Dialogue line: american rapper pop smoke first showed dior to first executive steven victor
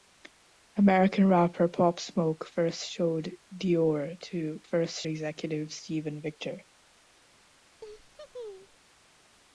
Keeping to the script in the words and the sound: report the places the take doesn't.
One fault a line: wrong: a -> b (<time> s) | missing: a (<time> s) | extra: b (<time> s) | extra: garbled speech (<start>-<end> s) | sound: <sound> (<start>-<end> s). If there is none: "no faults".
sound: laugh (7.8-8.8 s)